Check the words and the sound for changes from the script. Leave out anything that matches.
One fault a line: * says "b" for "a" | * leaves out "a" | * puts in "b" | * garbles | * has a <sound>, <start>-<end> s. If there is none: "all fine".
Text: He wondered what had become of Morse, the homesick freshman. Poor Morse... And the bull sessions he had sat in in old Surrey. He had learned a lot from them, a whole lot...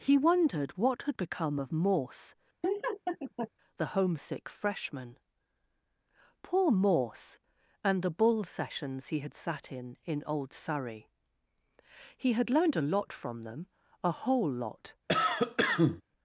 * has a laugh, 2.6-3.5 s
* has a cough, 15.1-16.0 s